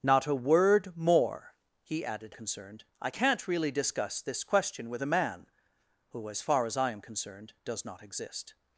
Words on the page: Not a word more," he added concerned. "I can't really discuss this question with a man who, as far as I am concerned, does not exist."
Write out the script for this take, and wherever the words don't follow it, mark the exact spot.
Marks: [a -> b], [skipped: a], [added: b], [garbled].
Not a word more," he added concerned. "I can't really discuss this question with a man who, as far as I am concerned, does not exist."